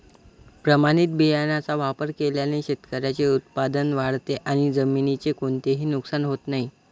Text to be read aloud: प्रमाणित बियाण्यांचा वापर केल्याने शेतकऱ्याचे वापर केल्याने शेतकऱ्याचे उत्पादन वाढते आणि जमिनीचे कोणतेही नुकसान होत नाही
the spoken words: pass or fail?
fail